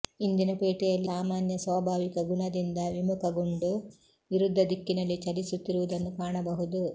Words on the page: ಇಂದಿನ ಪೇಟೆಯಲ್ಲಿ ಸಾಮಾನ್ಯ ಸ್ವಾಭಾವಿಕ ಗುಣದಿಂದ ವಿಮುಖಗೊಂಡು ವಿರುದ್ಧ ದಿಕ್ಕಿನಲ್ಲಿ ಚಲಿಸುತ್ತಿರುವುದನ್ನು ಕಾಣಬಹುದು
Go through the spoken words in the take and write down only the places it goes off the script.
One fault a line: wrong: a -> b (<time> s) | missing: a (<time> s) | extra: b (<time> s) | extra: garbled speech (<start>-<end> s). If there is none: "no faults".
no faults